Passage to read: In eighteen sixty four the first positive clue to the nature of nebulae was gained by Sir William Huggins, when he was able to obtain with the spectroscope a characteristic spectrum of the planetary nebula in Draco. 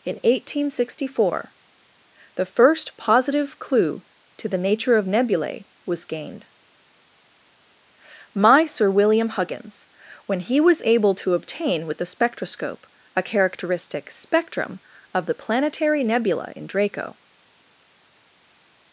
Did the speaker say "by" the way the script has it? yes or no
no